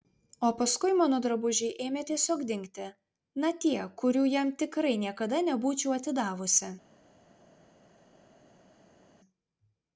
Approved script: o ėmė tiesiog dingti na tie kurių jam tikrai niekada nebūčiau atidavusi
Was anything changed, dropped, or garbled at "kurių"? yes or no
no